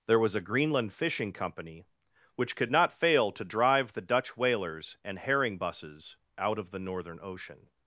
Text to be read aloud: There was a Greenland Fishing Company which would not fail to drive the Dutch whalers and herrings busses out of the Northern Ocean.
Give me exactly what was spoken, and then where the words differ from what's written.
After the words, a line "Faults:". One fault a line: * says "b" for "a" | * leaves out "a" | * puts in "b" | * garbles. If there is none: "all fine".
There was a Greenland Fishing Company which could not fail to drive the Dutch whalers and herring busses out of the Northern Ocean.
Faults:
* says "could" for "would"
* says "herring" for "herrings"